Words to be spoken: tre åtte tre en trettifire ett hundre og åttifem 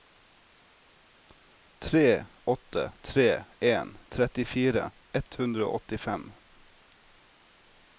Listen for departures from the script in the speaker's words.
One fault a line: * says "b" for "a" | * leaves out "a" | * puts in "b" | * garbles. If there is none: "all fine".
all fine